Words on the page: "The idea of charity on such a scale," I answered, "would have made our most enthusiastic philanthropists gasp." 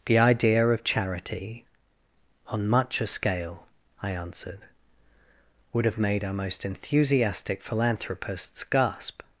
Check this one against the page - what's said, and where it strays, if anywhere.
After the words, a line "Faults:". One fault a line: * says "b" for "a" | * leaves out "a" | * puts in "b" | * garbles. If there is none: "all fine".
"The idea of charity on much a scale," I answered, "would have made our most enthusiastic philanthropists gasp."
Faults:
* says "much" for "such"